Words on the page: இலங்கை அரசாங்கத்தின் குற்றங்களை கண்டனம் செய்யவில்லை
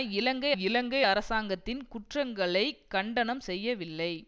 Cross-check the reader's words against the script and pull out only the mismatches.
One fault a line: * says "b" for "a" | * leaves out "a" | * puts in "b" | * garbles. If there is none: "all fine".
* puts in "இலங்கை"